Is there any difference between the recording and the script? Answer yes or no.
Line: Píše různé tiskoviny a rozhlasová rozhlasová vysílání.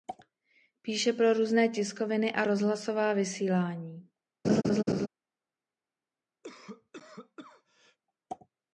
yes